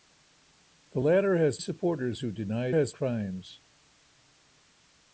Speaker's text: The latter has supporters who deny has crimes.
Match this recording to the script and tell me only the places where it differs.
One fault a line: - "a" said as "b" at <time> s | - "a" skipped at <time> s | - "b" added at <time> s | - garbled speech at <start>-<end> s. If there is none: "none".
none